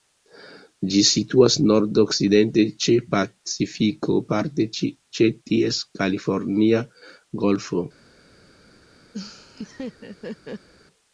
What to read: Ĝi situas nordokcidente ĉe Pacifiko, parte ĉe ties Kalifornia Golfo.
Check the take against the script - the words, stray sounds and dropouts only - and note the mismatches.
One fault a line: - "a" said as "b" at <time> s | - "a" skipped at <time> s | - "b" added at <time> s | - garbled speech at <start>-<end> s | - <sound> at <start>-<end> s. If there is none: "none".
- laugh at 9.1-10.7 s